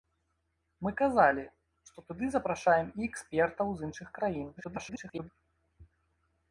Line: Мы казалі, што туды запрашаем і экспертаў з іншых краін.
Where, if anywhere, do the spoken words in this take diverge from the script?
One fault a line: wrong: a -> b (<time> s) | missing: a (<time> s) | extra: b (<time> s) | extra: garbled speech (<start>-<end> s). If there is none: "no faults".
extra: garbled speech (4.6-5.3 s)